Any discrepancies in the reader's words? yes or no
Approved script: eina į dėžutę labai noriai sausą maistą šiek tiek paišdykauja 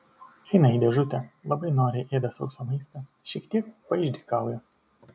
yes